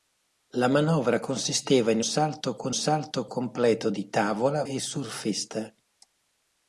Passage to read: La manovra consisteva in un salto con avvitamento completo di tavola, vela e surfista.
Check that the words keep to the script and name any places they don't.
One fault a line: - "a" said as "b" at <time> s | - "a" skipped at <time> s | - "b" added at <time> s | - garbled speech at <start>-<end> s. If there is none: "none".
- "un" skipped at 2.0 s
- "avvitamento" said as "salto" at 2.7 s
- "vela" skipped at 4.6 s